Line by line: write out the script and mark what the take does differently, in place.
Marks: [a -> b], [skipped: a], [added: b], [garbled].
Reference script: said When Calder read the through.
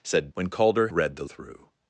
said When Calder read the through.